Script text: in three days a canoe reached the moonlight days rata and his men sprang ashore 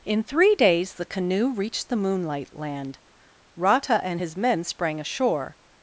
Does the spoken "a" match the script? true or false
false